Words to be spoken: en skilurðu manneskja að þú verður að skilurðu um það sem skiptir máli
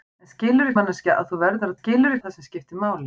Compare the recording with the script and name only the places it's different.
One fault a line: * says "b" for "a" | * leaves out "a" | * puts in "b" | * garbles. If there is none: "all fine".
all fine